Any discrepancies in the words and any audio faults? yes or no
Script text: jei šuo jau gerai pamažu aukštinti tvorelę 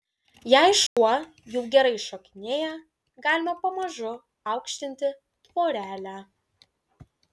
yes